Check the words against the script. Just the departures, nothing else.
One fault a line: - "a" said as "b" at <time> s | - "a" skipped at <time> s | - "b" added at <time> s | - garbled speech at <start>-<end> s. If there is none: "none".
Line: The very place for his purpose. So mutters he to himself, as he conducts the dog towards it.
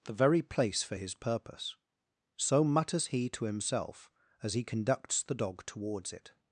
none